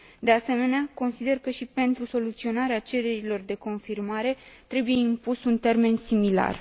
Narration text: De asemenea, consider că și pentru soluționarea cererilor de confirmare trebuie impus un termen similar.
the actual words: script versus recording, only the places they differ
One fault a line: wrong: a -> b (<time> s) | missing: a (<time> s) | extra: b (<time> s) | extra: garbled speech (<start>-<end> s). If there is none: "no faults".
no faults